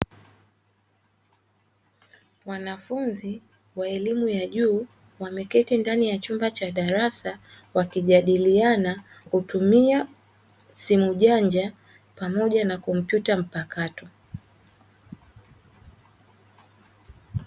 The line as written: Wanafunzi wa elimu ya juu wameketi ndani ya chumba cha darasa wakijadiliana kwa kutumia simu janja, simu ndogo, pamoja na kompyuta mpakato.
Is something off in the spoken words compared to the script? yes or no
yes